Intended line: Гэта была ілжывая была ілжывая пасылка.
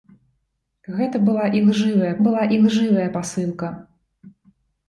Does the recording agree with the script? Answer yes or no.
yes